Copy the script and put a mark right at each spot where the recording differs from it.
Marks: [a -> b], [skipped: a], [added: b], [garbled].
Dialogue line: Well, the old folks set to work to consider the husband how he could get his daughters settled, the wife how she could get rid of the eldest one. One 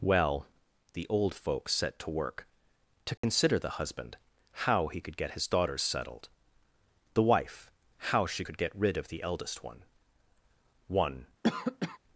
Well, the old folks set to work to consider the husband how he could get his daughters settled, the wife how she could get rid of the eldest one. One